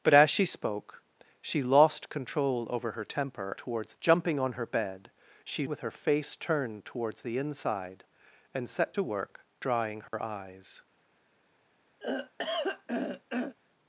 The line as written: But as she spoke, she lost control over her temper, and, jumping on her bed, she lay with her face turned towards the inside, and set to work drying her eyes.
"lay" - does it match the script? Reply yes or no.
no